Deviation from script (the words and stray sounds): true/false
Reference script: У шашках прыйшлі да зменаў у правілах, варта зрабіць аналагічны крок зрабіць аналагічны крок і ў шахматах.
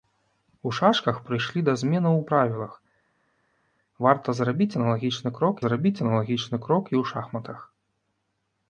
false